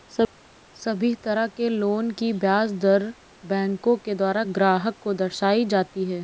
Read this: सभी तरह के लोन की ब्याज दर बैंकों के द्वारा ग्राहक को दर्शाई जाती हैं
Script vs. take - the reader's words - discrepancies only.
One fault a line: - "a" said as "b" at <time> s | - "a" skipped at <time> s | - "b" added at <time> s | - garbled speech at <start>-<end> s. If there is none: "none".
none